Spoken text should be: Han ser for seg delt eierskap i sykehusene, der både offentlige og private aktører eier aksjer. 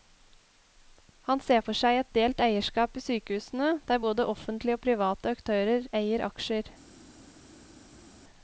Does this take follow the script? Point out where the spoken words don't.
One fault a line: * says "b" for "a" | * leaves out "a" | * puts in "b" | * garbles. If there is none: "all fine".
* puts in "et"